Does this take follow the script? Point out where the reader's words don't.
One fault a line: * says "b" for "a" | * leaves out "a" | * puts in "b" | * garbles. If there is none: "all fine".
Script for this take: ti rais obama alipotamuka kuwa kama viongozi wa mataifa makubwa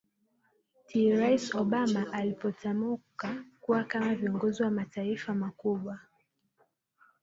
all fine